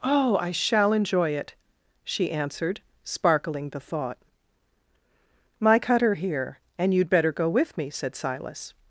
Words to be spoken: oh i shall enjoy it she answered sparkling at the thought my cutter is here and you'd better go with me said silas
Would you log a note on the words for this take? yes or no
yes